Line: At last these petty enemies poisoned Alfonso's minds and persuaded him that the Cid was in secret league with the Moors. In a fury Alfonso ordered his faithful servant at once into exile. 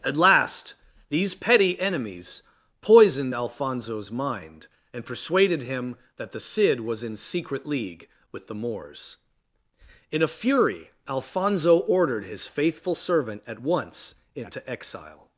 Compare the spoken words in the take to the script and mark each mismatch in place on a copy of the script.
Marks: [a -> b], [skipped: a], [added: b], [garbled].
At last these petty enemies poisoned Alfonso's [minds -> mind] and persuaded him that the Cid was in secret league with the Moors. In a fury Alfonso ordered his faithful servant at once into exile.